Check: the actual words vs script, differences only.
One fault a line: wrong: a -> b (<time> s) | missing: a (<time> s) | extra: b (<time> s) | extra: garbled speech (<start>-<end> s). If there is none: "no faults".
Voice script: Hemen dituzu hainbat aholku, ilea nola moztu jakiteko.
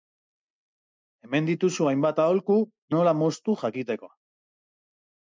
missing: ilea (2.6 s)